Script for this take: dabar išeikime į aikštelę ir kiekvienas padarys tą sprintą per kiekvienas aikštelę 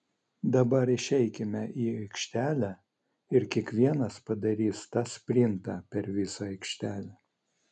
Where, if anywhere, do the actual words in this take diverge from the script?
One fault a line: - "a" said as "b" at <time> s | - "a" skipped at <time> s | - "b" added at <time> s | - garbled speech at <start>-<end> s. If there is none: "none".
- "kiekvienas" said as "visą" at 6.2 s